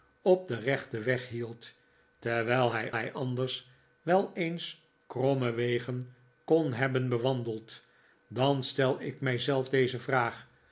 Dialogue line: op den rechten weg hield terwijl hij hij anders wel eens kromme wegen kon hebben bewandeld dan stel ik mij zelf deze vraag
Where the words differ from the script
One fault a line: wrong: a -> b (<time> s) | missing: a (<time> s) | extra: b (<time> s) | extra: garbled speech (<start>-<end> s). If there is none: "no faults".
no faults